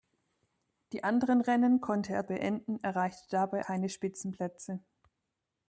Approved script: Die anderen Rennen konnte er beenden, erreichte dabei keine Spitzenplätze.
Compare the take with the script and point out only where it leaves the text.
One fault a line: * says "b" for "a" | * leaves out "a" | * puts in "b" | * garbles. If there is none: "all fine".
all fine